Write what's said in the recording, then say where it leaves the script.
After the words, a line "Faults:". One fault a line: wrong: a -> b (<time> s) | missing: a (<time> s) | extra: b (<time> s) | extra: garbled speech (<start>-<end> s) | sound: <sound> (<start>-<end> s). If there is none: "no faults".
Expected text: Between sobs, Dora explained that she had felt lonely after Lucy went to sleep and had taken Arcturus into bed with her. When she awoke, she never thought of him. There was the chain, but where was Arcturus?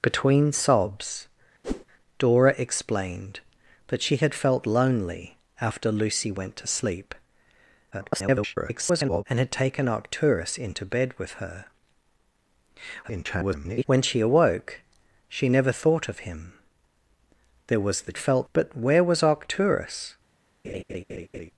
Between sobs, Dora explained that she had felt lonely after Lucy went to sleep [garbled] and had taken Arcturus into bed with her. [garbled] When she awoke, she never thought of him. There was the felt, but where was Arcturus?
Faults:
sound: whoosh (1.6-1.9 s)
extra: garbled speech (7.9-9.2 s)
extra: garbled speech (13.0-13.8 s)
wrong: chain -> felt (18.2 s)
sound: laugh (20.6-21.5 s)